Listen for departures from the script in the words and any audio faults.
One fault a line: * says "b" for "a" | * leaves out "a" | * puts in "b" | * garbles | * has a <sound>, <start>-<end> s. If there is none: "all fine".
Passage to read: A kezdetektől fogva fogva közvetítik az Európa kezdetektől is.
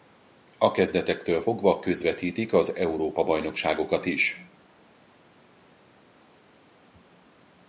* leaves out "fogva"
* says "bajnokságokat" for "kezdetektől"